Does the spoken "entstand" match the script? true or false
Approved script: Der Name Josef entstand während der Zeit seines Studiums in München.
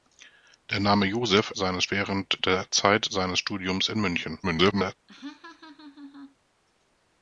false